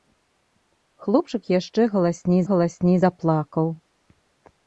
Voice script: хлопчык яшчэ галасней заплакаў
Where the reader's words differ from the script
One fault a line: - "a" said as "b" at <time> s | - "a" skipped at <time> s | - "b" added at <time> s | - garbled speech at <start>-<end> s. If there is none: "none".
- "галасней" added at 2.5 s